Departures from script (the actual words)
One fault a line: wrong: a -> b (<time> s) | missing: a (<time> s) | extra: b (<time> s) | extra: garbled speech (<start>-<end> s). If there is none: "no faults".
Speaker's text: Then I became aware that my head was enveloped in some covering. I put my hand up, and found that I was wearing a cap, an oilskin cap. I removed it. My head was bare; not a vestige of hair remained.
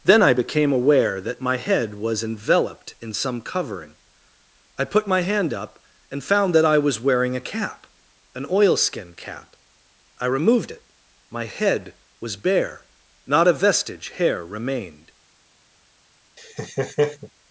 missing: of (14.1 s)